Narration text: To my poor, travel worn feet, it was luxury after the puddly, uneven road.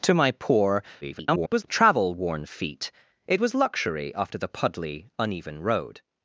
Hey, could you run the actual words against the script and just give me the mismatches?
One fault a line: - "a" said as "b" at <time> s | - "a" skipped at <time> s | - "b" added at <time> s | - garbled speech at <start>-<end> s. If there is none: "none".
- garbled speech at 1.0-1.6 s